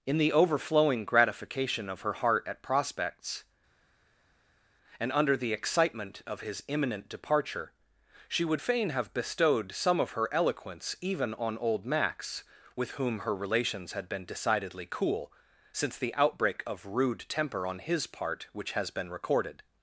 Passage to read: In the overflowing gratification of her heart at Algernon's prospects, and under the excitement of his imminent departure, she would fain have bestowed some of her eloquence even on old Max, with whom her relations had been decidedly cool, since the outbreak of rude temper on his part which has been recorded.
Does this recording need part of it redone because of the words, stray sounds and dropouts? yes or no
yes